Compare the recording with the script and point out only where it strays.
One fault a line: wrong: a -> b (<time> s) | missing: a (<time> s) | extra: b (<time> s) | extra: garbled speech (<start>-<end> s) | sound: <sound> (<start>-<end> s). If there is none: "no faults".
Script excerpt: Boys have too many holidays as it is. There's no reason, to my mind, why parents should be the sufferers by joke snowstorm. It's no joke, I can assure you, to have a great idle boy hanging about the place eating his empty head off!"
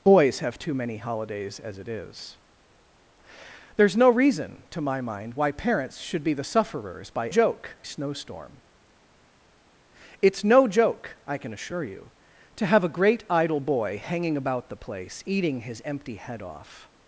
no faults